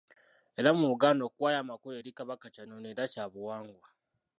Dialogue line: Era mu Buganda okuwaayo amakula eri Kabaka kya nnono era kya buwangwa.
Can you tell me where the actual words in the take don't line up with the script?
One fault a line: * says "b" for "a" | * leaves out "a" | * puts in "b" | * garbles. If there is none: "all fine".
all fine